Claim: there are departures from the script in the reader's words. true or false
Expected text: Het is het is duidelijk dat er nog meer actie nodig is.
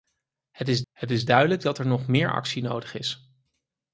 false